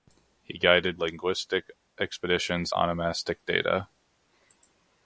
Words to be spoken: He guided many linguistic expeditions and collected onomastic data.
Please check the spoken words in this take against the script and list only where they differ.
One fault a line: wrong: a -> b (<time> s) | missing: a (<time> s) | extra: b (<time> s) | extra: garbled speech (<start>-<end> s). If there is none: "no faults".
missing: many (1.0 s)
missing: and collected (2.7 s)